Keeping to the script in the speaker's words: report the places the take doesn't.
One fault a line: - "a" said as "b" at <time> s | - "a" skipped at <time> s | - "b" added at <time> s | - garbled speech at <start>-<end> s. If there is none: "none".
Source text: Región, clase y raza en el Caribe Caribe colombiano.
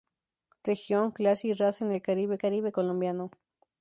none